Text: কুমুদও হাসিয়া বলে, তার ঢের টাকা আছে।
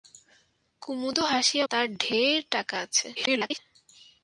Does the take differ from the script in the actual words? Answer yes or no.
yes